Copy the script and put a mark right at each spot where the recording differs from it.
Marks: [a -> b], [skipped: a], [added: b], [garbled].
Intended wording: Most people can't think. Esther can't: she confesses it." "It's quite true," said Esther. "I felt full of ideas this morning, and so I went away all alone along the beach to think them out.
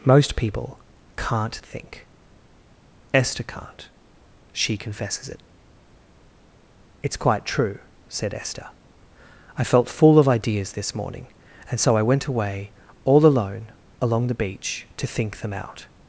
Most people can't think. Esther can't: she confesses it." "It's quite true," said Esther. "I felt full of ideas this morning, and so I went away all alone along the beach to think them out.